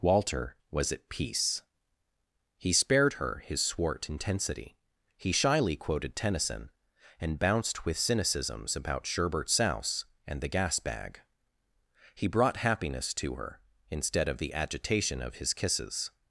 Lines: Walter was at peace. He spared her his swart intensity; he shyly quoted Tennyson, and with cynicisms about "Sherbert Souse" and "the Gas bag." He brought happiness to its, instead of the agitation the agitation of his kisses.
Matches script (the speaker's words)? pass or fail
fail